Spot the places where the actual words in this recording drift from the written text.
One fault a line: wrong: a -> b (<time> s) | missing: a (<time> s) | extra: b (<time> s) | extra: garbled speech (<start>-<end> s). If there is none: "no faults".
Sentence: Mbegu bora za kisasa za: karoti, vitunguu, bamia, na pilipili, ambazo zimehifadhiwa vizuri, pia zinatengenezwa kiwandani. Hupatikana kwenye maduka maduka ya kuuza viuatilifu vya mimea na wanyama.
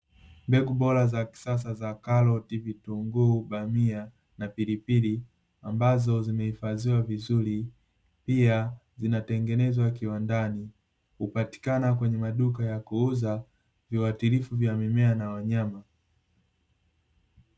missing: maduka (12.7 s)